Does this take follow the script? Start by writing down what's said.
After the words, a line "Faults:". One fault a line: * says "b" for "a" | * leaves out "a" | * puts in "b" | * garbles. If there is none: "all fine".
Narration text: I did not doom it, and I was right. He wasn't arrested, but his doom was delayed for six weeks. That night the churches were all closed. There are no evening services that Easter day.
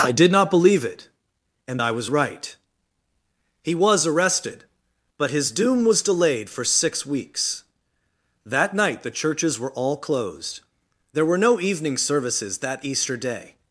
I did not believe it, and I was right. He was arrested, but his doom was delayed for six weeks. That night the churches were all closed. There were no evening services that Easter day.
Faults:
* says "believe" for "doom"
* says "was" for "wasn't"
* says "were" for "are"